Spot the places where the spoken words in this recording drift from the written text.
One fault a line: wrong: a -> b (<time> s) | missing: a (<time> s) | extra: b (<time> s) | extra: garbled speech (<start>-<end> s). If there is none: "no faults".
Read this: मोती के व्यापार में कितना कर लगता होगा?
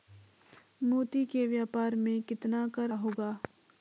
missing: लगता (2.9 s)